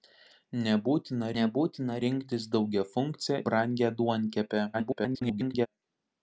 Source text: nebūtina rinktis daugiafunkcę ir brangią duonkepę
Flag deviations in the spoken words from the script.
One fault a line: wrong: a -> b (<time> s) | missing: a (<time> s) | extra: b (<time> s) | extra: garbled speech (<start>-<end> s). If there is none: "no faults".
extra: nebūtina (1.4 s)
missing: ir (3.4 s)
extra: garbled speech (4.7-5.7 s)